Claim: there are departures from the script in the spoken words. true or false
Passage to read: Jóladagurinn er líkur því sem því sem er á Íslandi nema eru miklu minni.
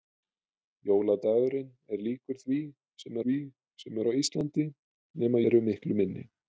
false